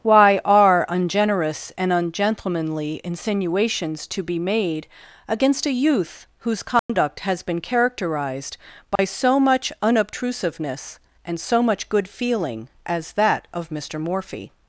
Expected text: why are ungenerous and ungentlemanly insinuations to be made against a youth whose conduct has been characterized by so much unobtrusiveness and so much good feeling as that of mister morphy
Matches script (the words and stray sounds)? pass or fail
fail